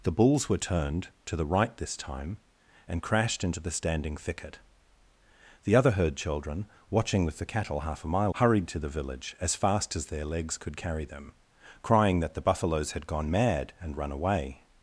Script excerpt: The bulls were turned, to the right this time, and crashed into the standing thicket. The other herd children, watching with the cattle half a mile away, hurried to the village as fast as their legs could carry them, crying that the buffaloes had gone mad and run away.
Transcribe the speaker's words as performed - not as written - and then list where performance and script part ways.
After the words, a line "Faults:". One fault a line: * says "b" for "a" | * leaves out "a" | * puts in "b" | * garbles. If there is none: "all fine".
The bulls were turned, to the right this time, and crashed into the standing thicket. The other herd children, watching with the cattle half a mile hurried to the village as fast as their legs could carry them, crying that the buffaloes had gone mad and run away.
Faults:
* leaves out "away"